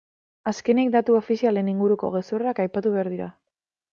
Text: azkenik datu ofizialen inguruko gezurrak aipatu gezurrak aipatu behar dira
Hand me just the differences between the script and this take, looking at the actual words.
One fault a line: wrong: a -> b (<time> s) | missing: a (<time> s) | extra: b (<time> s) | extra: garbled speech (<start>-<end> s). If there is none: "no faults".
missing: gezurrak aipatu (3.0 s)